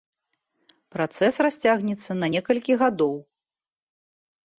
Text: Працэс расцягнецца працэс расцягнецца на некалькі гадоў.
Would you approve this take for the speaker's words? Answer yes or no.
no